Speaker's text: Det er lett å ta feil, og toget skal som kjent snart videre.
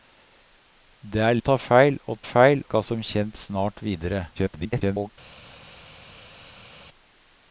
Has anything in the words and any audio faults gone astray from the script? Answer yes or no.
yes